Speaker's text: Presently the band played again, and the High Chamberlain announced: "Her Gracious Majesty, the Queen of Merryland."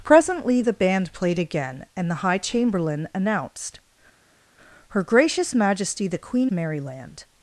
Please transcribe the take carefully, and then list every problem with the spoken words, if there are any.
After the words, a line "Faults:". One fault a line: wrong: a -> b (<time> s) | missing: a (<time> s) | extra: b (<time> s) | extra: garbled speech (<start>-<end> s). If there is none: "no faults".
Presently the band played again, and the High Chamberlain announced: "Her Gracious Majesty, the Queen Merryland."
Faults:
missing: of (6.5 s)